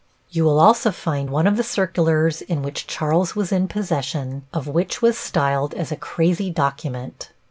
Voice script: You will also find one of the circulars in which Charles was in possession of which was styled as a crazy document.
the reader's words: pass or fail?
pass